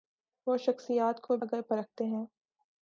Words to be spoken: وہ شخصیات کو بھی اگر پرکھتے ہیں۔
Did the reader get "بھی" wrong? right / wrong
wrong